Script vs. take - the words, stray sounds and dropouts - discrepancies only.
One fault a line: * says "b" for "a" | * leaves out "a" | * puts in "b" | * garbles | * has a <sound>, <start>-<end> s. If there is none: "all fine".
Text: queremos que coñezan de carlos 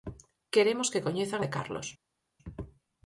all fine